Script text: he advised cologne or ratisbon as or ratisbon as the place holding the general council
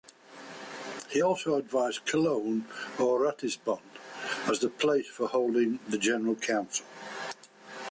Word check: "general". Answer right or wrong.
right